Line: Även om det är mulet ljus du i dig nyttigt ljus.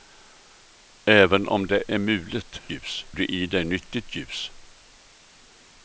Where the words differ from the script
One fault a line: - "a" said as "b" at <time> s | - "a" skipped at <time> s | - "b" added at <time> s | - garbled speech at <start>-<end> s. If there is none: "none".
none